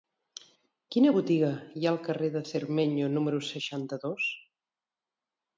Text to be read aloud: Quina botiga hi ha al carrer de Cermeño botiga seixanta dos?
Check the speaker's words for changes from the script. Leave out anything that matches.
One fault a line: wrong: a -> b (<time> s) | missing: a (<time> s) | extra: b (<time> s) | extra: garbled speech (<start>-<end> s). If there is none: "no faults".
wrong: botiga -> número (3.2 s)